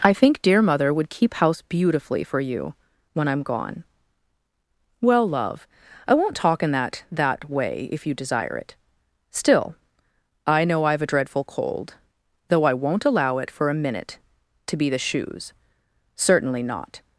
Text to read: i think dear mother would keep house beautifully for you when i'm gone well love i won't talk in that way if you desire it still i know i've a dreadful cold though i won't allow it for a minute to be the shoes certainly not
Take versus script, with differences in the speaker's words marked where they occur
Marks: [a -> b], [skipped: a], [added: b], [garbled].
i think dear mother would keep house beautifully for you when i'm gone well love i won't talk in that [added: that] way if you desire it still i know i've a dreadful cold though i won't allow it for a minute to be the shoes certainly not